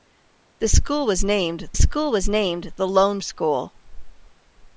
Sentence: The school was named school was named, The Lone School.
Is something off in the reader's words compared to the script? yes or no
no